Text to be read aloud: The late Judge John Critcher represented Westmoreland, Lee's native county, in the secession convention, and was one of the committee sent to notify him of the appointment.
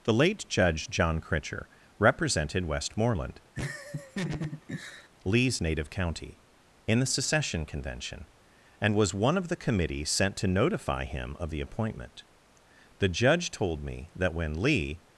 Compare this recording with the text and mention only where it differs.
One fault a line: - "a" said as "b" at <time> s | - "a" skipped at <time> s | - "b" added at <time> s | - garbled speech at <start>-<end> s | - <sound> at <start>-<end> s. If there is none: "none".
- laugh at 3.6-5.1 s
- "The judge told me that when Lee" added at 13.0 s